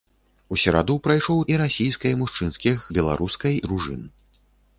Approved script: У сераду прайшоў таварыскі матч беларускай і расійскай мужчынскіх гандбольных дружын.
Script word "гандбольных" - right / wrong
wrong